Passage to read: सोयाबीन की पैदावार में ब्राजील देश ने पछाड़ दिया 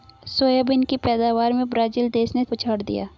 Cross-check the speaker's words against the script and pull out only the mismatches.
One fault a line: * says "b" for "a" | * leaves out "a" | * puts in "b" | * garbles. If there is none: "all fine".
all fine